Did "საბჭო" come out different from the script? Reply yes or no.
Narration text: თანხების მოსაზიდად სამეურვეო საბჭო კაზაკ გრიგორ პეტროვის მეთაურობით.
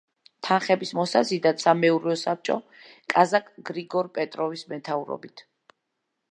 no